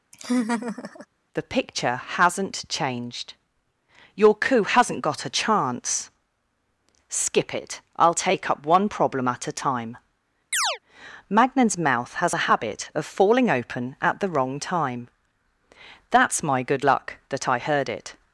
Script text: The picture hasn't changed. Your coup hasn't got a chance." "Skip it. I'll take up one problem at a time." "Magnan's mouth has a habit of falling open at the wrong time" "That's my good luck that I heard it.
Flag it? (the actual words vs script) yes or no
no